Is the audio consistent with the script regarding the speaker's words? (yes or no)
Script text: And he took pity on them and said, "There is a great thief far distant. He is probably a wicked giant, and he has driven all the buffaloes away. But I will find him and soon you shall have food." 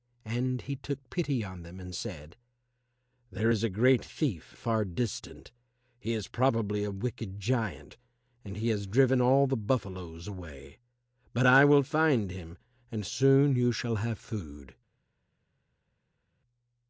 yes